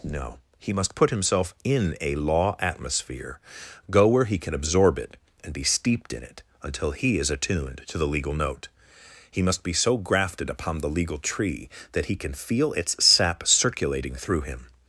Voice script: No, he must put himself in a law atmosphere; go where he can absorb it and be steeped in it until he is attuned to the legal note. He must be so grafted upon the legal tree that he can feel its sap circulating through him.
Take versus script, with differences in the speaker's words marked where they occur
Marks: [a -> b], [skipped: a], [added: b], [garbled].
No, he must put himself in a law atmosphere; go where he can absorb it and be steeped in it until he is attuned to the legal note. He must be so grafted upon the legal tree that he can feel its sap circulating through him.